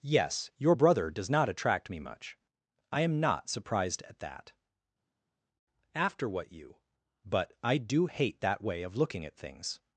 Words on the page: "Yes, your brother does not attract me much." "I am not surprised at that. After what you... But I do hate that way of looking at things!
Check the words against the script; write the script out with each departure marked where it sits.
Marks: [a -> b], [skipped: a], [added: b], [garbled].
"Yes, your brother does not attract me much." "I am not surprised at that. After what you... But I do hate that way of looking at things!